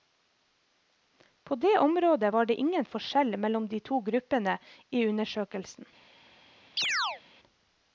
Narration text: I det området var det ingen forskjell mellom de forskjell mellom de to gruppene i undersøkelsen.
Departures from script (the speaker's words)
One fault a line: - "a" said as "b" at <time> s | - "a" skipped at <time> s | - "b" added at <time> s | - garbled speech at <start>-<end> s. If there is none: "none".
- "I" said as "På" at 1.4 s
- "forskjell mellom de" skipped at 3.8 s